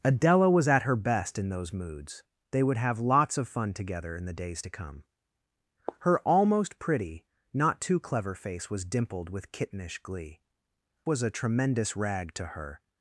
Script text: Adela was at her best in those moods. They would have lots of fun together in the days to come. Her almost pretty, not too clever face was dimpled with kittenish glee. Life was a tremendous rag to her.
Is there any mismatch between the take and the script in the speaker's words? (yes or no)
yes